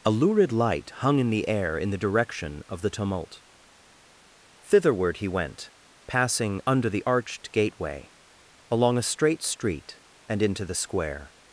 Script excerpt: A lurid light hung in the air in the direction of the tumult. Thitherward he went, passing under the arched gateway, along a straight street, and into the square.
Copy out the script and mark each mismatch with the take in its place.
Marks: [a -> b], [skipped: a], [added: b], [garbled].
A lurid light hung in the air in the direction of the tumult. Thitherward he went, passing under the arched gateway, along a straight street, and into the square.